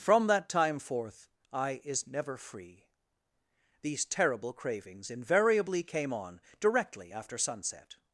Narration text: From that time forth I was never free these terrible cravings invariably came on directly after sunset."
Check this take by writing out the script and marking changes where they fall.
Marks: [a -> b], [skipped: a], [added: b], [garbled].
From that time forth I [was -> is] never free these terrible cravings invariably came on directly after sunset."